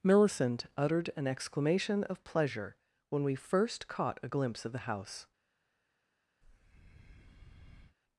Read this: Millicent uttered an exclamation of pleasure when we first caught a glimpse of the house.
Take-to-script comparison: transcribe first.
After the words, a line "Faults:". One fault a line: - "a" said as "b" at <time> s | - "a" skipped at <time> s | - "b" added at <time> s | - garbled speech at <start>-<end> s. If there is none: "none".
Millicent uttered an exclamation of pleasure when we first caught a glimpse of the house.
Faults:
none